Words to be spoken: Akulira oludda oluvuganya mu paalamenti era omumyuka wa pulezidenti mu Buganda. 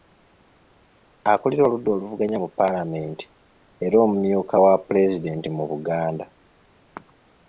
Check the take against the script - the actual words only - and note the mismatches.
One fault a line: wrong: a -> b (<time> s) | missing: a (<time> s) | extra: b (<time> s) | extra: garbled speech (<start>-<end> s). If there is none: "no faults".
no faults